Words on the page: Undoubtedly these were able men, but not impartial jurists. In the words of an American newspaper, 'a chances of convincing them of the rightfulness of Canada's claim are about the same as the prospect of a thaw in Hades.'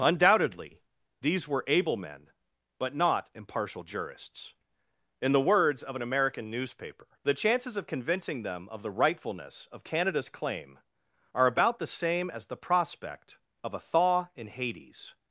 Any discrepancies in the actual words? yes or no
yes